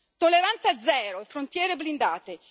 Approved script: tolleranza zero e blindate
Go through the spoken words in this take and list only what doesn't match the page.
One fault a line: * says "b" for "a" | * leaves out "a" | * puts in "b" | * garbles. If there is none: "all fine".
* puts in "frontiere"